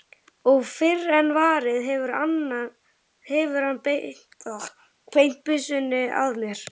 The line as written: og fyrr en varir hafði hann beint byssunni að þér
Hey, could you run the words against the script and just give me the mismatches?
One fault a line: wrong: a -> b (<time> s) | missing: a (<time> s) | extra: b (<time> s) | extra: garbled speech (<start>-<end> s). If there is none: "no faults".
wrong: hafði -> hefur (1.9 s)
wrong: þér -> mér (6.5 s)